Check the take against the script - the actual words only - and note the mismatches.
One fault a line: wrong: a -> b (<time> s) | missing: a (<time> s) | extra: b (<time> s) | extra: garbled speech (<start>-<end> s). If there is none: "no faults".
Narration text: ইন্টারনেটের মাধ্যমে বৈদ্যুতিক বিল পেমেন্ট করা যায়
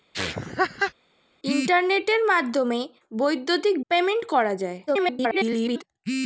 missing: বিল (3.8 s)
extra: garbled speech (4.9-5.8 s)